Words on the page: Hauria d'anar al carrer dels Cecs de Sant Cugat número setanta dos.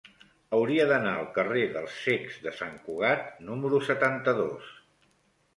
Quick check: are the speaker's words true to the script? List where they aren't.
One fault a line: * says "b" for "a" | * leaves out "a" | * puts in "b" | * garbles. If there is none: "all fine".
all fine